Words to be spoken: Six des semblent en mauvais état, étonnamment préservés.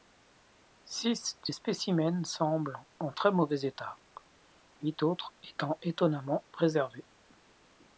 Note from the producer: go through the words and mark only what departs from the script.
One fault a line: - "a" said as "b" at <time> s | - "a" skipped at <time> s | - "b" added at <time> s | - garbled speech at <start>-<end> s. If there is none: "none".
- "spécimens" added at 1.5 s
- "très" added at 3.1 s
- "huit autres étant" added at 4.8 s